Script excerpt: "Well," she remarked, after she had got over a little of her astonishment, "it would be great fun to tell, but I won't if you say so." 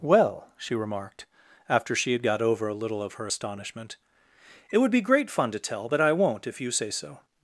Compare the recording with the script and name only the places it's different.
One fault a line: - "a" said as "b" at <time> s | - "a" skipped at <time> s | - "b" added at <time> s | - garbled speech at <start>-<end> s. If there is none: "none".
none